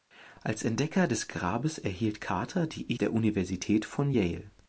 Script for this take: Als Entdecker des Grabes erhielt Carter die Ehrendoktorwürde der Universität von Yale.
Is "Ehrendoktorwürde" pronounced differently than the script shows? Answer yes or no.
yes